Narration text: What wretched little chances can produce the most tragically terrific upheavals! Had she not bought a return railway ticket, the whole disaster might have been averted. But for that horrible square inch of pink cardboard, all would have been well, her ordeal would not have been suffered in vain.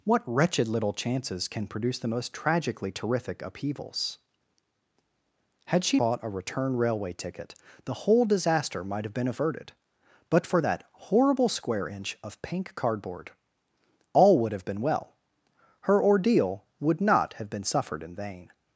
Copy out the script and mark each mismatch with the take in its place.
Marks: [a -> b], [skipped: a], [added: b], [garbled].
What wretched little chances can produce the most tragically terrific upheavals! Had she [skipped: not] bought a return railway ticket, the whole disaster might have been averted. But for that horrible square inch of pink cardboard, all would have been well, her ordeal would not have been suffered in vain.